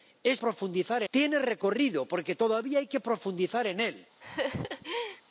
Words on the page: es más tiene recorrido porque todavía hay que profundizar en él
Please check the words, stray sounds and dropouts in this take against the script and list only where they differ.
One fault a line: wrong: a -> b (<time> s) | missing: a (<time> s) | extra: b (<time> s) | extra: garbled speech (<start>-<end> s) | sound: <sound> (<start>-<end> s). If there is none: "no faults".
wrong: más -> profundizar (0.4 s)
sound: laugh (4.2-5.2 s)